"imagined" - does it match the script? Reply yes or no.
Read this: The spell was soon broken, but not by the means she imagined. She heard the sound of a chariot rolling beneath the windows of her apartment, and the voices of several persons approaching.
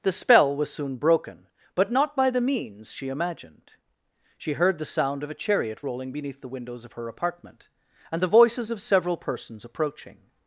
yes